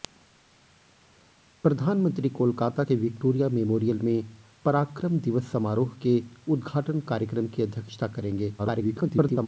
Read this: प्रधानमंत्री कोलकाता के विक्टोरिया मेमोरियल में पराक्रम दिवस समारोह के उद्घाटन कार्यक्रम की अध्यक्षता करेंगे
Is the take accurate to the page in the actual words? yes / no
no